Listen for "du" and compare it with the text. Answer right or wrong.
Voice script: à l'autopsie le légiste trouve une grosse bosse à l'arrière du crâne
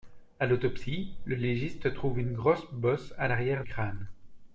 wrong